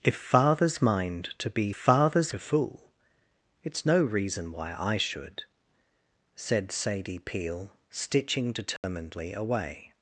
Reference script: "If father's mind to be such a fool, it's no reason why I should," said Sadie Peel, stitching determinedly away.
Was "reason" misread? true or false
false